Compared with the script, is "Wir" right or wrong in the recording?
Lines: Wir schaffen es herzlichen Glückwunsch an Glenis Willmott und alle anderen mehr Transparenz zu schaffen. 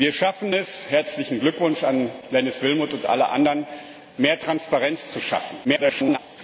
right